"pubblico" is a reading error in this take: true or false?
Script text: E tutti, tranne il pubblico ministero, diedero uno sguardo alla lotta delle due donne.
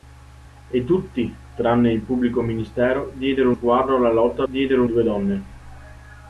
false